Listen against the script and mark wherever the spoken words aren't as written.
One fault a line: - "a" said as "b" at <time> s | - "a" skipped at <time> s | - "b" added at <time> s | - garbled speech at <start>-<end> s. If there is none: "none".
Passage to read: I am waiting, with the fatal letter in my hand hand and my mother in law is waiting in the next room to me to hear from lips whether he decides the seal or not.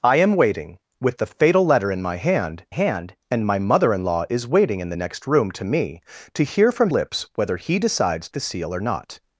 none